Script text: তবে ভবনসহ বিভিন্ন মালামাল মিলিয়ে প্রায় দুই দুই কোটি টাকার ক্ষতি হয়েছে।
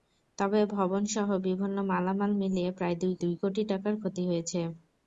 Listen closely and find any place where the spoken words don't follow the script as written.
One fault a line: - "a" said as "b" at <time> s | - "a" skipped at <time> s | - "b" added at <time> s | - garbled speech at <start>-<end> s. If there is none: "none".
none